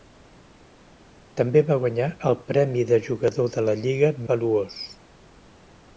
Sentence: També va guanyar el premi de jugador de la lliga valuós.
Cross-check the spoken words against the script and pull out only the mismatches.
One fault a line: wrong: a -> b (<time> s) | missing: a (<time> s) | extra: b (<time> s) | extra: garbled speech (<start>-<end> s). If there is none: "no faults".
no faults